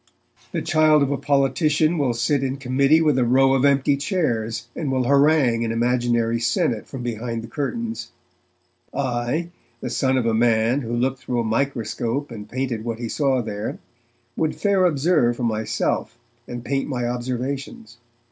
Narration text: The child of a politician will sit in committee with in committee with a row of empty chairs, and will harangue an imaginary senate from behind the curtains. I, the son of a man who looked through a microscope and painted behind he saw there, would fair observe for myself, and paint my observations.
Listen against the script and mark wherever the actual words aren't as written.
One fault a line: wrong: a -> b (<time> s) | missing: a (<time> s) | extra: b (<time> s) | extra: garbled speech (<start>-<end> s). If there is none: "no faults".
missing: in committee with (3.2 s)
wrong: behind -> what (12.8 s)